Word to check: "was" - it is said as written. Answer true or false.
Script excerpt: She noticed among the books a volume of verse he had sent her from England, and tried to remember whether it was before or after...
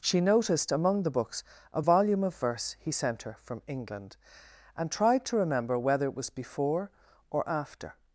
true